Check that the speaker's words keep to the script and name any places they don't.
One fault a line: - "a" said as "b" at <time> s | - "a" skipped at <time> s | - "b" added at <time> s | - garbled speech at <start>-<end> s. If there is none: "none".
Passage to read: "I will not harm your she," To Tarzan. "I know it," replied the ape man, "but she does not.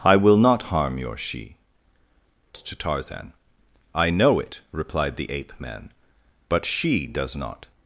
none